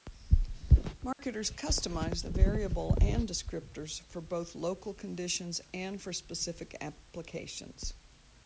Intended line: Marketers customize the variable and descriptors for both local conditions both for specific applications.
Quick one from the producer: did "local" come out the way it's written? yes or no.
yes